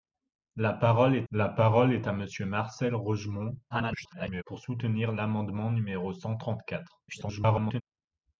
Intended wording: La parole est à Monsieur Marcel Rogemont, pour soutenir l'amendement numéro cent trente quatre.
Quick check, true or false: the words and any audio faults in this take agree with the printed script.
false